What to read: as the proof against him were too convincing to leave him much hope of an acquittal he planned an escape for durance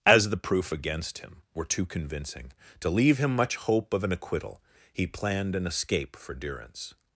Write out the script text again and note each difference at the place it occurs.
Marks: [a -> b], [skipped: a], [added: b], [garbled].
as the proof against him were too convincing to leave him much hope of an acquittal he planned an escape for durance